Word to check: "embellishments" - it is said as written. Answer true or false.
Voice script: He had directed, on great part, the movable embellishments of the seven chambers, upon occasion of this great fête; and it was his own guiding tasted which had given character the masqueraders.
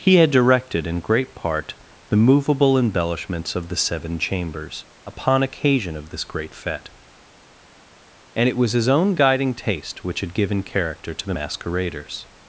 true